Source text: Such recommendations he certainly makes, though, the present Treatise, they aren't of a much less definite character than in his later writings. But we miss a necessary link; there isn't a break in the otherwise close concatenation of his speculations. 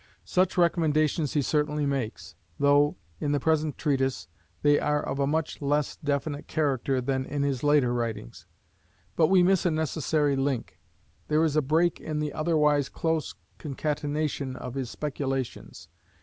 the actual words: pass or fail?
fail